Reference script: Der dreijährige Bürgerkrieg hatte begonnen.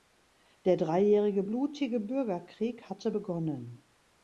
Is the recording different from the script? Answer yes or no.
yes